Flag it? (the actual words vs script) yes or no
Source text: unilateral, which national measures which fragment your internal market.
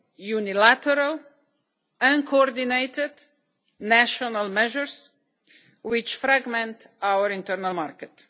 yes